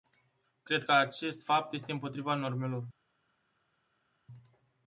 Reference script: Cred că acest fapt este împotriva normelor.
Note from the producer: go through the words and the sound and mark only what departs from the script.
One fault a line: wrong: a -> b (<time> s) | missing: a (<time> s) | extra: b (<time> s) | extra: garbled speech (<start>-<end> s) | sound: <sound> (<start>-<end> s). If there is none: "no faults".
no faults